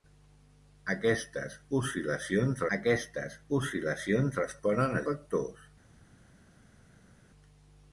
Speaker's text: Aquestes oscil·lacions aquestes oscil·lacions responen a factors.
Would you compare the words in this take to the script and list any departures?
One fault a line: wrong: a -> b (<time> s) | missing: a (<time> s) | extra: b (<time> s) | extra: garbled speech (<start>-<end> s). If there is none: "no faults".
no faults